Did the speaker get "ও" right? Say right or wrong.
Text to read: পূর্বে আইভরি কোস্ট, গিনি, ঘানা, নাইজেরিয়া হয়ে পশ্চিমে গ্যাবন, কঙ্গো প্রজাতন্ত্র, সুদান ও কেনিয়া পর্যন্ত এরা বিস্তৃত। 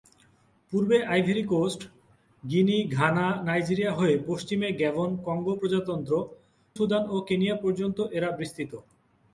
right